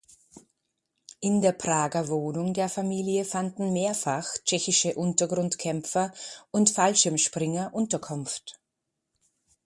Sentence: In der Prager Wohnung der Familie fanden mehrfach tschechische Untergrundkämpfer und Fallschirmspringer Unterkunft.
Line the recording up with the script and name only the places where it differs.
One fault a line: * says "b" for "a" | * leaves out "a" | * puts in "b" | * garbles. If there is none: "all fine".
all fine